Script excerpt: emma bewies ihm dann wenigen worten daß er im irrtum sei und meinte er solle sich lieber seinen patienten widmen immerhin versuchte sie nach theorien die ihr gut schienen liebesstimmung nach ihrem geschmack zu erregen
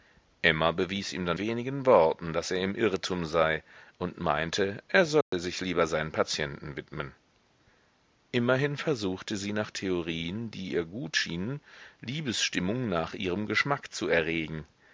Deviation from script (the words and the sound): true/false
true